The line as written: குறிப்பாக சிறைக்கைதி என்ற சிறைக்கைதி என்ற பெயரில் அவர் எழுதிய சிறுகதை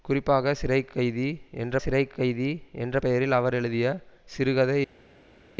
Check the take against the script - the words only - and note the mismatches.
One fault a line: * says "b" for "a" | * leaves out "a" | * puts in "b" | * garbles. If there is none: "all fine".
all fine